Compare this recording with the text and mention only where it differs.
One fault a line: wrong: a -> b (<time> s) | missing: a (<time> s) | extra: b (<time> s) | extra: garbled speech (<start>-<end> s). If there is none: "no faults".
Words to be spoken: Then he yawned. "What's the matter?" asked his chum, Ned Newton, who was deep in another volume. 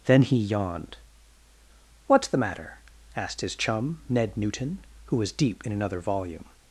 no faults